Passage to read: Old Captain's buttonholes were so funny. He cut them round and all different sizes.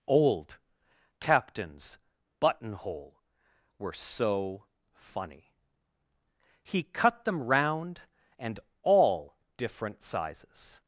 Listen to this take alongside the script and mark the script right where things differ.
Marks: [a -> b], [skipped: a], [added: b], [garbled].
Old Captain's [buttonholes -> buttonhole] were so funny. He cut them round and all different sizes.